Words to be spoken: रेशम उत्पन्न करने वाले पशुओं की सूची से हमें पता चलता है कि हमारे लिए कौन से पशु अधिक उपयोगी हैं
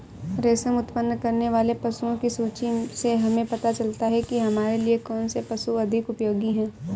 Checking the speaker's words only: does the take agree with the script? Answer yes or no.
yes